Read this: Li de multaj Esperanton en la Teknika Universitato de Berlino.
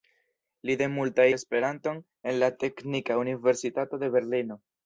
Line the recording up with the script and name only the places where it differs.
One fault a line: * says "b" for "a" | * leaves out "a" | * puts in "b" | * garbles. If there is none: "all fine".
all fine